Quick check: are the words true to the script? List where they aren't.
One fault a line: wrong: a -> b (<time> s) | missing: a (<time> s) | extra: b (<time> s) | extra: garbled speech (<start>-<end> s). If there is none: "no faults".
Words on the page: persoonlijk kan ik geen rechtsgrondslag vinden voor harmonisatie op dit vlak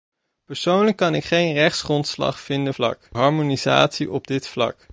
wrong: voor -> vlak (2.7 s)